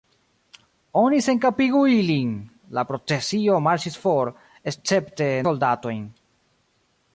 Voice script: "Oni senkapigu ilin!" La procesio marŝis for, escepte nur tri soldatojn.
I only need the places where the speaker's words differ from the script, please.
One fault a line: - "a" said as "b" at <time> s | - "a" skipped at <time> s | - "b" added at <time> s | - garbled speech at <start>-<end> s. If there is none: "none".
- "nur tri" skipped at 5.3 s